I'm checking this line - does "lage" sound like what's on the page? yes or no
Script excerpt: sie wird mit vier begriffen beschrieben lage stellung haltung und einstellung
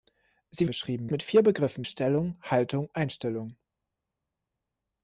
no